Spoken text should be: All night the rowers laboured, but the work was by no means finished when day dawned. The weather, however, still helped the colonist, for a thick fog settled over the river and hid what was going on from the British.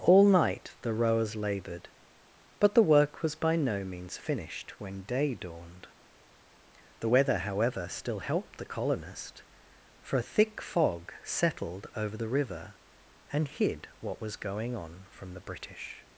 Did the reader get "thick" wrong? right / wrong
right